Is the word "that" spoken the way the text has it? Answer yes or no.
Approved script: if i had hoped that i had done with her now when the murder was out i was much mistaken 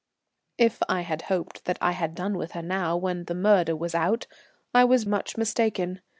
yes